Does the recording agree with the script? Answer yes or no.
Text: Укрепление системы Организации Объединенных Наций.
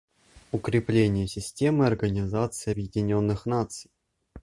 yes